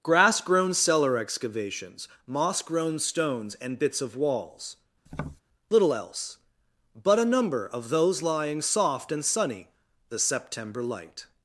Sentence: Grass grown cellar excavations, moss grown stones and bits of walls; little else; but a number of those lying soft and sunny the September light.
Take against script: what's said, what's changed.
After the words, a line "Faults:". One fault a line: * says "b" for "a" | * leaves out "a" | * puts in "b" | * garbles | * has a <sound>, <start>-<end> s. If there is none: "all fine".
Grass grown cellar excavations, moss grown stones and bits of walls; little else; but a number of those lying soft and sunny the September light.
Faults:
* has a tap, 5.1-5.4 s